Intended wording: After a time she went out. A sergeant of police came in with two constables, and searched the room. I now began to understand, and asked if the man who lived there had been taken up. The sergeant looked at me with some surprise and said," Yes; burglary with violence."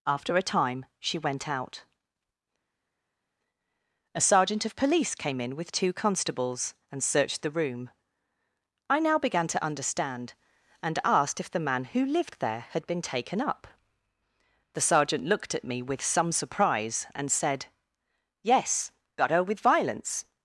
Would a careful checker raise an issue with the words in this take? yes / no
yes